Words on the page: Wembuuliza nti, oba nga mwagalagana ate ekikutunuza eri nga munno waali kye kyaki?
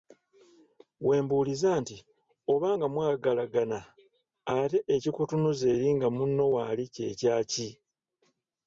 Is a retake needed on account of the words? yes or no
no